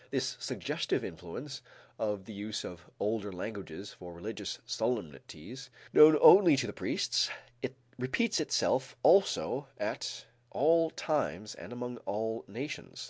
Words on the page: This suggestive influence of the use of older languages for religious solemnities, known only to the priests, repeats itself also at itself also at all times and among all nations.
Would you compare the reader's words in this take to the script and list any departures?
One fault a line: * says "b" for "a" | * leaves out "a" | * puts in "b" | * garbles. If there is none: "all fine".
* leaves out "itself also at"